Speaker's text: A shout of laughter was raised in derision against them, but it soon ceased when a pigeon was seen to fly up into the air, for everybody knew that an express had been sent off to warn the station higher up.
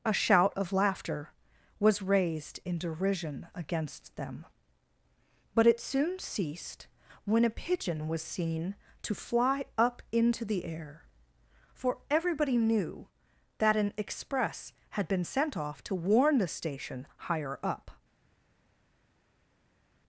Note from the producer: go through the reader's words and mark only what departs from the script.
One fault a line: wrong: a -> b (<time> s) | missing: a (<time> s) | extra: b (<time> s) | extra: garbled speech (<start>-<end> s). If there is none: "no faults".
no faults